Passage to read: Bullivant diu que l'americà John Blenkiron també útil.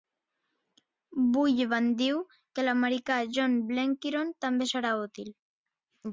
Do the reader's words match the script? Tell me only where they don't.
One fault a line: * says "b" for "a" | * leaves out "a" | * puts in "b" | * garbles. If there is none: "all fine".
* puts in "serà"